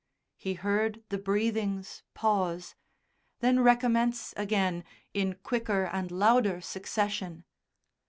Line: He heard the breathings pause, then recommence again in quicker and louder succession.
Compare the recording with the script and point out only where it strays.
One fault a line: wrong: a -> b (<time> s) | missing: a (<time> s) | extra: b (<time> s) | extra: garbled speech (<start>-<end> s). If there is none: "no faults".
no faults